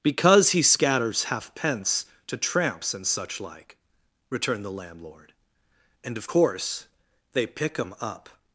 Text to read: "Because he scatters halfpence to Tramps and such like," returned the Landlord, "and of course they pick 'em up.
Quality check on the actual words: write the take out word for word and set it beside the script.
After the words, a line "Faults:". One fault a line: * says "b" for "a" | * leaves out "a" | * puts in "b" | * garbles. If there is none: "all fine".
"Because he scatters halfpence to Tramps and such like," returned the Landlord, "and of course they pick 'em up.
Faults:
all fine